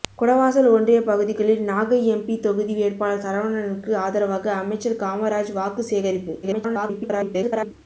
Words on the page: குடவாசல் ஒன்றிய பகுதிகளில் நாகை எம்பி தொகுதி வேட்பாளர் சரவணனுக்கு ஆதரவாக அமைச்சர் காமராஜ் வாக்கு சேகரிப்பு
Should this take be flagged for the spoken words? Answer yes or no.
yes